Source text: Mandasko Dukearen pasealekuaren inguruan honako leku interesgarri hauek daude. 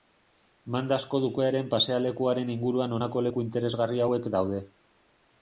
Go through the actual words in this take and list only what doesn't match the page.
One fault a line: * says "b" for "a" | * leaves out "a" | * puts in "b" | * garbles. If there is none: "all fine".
all fine